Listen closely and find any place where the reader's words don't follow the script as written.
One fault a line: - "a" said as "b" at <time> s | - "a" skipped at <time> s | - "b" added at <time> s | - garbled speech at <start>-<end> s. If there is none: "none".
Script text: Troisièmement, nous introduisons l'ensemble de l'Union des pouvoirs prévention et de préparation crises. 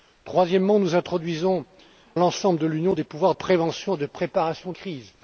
none